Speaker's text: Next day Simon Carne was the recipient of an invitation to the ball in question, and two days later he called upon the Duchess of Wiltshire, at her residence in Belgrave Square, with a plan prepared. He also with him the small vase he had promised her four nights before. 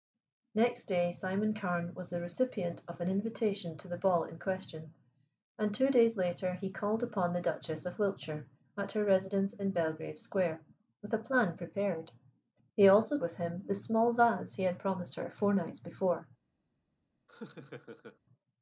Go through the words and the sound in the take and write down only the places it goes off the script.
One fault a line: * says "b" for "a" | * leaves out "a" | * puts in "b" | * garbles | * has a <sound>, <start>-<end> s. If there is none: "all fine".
* has a laugh, 17.3-18.2 s